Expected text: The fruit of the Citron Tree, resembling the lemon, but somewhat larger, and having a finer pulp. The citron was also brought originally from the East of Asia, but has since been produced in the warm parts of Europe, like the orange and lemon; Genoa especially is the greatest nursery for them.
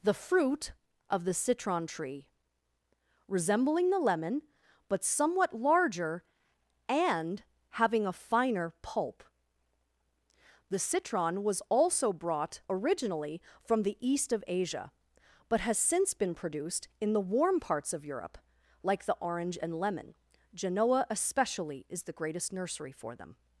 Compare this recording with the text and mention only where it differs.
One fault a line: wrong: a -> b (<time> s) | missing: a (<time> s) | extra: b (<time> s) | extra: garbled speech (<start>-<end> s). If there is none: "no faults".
no faults